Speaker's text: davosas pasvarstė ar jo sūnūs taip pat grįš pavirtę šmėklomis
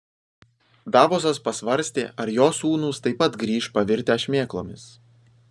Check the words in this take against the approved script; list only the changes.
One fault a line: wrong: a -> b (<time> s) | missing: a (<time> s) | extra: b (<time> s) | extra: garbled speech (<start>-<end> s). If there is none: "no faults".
no faults